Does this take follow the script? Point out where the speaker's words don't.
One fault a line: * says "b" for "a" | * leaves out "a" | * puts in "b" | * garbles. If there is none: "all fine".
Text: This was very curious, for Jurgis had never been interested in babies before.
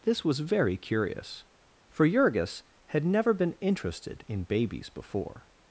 all fine